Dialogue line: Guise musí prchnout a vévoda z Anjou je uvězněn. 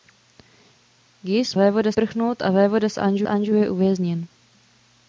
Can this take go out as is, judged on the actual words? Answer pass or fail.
fail